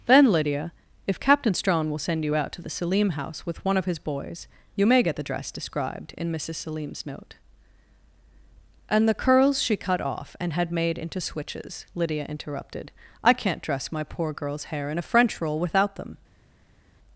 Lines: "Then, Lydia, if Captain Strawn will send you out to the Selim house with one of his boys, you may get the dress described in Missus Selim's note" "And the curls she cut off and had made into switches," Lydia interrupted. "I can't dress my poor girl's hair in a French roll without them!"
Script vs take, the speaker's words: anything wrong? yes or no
no